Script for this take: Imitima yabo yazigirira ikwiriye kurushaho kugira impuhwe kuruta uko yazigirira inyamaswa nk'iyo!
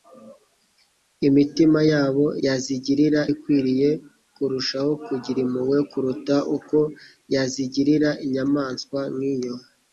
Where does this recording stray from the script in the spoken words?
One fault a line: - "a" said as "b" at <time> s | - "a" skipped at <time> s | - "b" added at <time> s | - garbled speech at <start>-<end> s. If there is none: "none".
none